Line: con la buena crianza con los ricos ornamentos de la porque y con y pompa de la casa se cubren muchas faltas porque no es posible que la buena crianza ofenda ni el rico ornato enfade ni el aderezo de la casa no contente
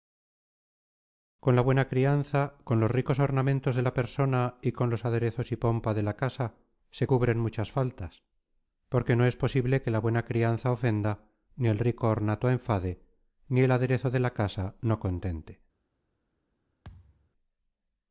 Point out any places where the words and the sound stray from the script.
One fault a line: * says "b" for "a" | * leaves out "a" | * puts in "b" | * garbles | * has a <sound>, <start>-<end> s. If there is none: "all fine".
* says "persona" for "porque"
* puts in "los aderezos"
* has a thud, 16.8-17.3 s